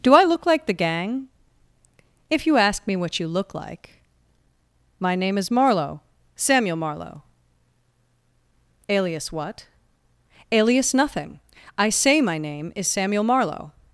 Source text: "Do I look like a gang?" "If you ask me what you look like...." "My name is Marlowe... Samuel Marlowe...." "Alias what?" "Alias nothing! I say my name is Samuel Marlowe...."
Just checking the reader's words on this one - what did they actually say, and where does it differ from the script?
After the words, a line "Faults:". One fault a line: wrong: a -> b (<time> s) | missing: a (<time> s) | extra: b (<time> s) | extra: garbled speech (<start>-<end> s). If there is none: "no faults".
"Do I look like the gang?" "If you ask me what you look like...." "My name is Marlowe... Samuel Marlowe...." "Alias what?" "Alias nothing! I say my name is Samuel Marlowe...."
Faults:
wrong: a -> the (0.7 s)